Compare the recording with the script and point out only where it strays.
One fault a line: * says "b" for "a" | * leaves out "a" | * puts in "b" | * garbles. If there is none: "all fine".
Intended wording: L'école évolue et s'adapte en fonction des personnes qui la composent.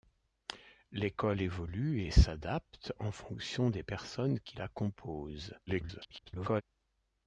* garbles